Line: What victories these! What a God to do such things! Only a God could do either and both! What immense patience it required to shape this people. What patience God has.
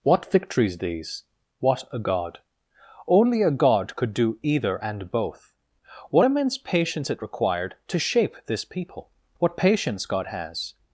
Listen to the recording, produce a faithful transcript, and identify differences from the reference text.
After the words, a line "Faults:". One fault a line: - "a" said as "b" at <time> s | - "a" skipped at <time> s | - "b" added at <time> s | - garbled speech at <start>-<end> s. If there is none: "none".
What victories these! What a God! Only a God could do either and both! What immense patience it required to shape this people. What patience God has.
Faults:
- "to do such things" skipped at 2.4 s